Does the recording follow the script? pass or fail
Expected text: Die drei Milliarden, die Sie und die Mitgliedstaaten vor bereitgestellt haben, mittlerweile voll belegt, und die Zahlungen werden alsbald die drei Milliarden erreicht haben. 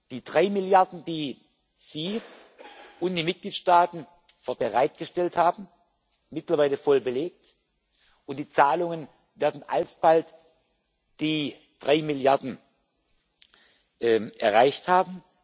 pass